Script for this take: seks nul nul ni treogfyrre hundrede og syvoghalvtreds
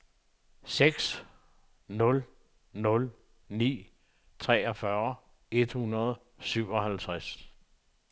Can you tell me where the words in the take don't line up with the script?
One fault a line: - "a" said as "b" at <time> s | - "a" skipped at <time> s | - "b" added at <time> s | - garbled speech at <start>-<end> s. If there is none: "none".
- "et" added at 5.5 s